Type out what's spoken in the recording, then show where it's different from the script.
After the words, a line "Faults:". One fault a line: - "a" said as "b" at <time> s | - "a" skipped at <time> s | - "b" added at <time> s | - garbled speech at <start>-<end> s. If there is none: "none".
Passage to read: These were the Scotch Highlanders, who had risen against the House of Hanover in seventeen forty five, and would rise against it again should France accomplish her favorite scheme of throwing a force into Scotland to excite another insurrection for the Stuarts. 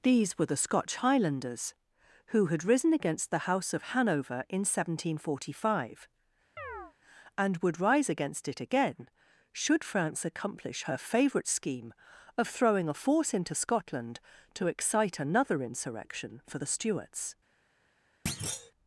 These were the Scotch Highlanders, who had risen against the House of Hanover in seventeen forty five, and would rise against it again should France accomplish her favorite scheme of throwing a force into Scotland to excite another insurrection for the Stuarts.
Faults:
none